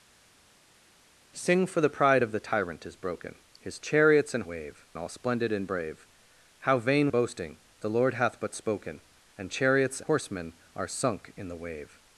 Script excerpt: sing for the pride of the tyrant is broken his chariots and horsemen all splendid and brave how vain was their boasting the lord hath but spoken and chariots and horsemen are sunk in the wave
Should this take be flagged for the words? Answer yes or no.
yes